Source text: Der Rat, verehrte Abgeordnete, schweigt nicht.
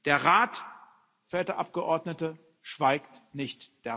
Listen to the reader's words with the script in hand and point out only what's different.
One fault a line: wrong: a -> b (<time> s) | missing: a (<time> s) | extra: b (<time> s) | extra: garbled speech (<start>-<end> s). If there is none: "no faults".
no faults